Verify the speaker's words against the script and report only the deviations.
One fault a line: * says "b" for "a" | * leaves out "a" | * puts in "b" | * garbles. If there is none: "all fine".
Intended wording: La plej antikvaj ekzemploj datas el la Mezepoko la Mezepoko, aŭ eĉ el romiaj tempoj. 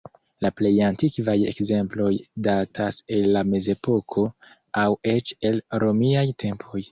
* leaves out "la Mezepoko"